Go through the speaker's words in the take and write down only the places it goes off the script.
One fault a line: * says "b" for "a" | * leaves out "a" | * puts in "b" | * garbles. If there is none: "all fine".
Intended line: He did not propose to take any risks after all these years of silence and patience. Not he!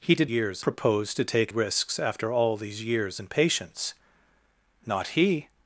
* says "years" for "not"
* leaves out "any"
* leaves out "of silence"